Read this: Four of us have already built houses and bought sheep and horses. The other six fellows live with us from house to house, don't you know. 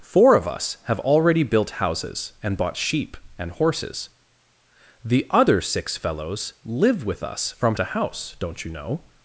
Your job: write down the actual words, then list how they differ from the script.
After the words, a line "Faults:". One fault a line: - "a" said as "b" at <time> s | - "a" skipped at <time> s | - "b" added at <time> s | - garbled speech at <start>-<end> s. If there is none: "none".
Four of us have already built houses and bought sheep and horses. The other six fellows live with us from to house, don't you know.
Faults:
- "house" skipped at 7.8 s